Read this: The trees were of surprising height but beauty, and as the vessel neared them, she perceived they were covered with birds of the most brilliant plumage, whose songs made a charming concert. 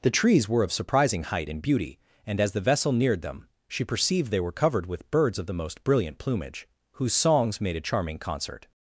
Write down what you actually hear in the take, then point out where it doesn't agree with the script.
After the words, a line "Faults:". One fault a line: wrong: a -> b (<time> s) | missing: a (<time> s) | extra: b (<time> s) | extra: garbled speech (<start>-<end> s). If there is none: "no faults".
The trees were of surprising height and beauty, and as the vessel neared them, she perceived they were covered with birds of the most brilliant plumage, whose songs made a charming concert.
Faults:
wrong: but -> and (1.5 s)